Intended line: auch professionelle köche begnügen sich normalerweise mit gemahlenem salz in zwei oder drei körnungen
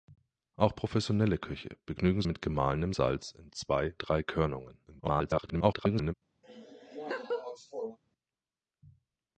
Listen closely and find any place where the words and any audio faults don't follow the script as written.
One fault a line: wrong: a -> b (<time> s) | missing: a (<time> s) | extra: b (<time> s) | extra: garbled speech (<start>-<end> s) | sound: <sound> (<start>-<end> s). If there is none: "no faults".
missing: sich normalerweise (2.2 s)
missing: oder (3.9 s)
extra: garbled speech (4.9-6.1 s)
sound: laugh (6.4-8.0 s)